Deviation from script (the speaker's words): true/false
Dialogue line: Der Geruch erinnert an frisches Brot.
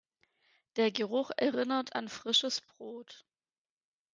false